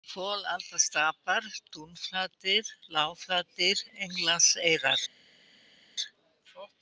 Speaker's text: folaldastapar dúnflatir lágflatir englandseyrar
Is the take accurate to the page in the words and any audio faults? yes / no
yes